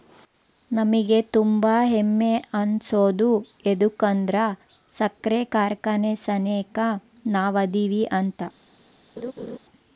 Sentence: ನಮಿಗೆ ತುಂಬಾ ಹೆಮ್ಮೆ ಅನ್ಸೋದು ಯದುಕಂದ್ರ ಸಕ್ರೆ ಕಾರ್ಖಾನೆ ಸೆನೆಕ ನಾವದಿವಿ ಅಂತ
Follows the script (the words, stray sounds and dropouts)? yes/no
no